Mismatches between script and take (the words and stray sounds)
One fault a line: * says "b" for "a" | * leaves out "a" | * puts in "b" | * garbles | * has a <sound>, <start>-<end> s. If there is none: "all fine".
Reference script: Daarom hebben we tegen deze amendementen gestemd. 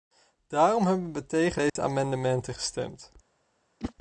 * has a dropout, 1.7-1.8 s
* has a whoosh, 3.8-3.9 s